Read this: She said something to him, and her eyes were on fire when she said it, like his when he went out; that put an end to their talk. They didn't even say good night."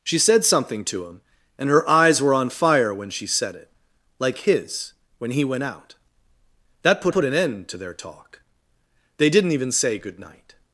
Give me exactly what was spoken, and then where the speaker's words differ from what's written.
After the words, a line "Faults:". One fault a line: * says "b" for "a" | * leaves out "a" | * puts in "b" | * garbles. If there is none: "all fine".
She said something to him, and her eyes were on fire when she said it, like his when he went out; that put put an end to their talk. They didn't even say good night."
Faults:
* puts in "put"